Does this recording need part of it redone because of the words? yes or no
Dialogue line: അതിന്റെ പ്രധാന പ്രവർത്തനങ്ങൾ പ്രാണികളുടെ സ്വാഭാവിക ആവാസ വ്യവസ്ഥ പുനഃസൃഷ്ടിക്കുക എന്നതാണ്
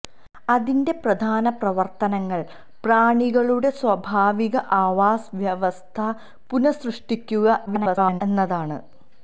yes